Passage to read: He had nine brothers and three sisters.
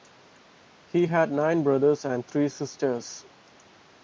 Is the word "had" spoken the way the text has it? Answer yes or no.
yes